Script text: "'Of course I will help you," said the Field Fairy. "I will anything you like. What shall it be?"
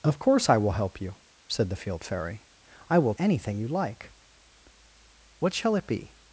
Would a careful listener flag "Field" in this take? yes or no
no